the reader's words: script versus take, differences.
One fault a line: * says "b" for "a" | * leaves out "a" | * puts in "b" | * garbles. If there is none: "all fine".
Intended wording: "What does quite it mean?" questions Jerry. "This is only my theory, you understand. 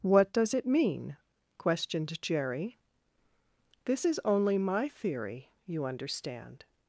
* leaves out "quite"
* says "questioned" for "questions"